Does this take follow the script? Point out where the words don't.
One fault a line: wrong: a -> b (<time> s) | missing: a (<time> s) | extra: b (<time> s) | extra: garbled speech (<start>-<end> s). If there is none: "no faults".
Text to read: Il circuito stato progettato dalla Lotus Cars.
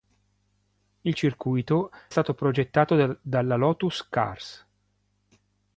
no faults